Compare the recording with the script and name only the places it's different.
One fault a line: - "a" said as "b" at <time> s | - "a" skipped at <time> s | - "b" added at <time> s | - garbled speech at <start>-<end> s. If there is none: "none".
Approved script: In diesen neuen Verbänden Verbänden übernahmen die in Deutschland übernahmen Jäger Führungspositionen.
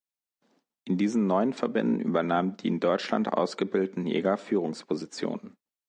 - "Verbänden" skipped at 2.0 s
- "übernahmen" said as "ausgebildeten" at 3.3 s